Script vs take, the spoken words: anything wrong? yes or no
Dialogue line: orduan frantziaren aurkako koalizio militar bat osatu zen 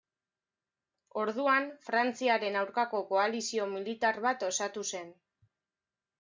no